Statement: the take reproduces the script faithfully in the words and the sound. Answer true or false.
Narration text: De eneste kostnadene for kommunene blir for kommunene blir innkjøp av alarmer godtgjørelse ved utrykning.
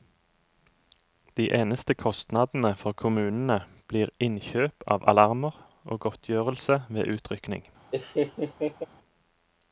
false